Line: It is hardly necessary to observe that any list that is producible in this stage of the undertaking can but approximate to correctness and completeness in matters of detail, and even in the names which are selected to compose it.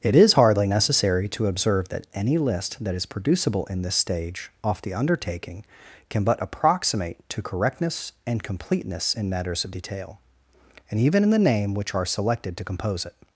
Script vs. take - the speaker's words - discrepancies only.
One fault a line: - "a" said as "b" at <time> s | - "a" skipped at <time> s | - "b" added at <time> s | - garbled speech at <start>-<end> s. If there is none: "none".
- "of" said as "off" at 4.6 s
- "names" said as "name" at 11.4 s